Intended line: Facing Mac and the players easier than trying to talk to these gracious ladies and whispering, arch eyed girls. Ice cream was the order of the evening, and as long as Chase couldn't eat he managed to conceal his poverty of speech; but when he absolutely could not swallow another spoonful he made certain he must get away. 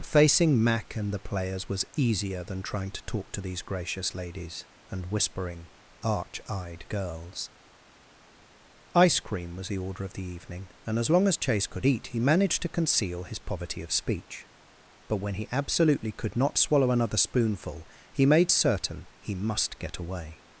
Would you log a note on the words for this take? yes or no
yes